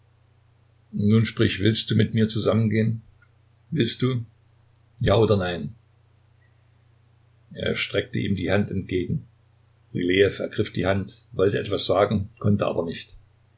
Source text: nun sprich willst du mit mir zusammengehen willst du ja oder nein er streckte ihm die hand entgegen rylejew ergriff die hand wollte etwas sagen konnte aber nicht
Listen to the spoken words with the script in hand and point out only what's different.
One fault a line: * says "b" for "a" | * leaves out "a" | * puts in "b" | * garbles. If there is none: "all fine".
all fine